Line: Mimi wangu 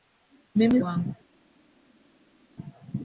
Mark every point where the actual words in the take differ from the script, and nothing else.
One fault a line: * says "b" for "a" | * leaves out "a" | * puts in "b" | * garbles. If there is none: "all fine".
all fine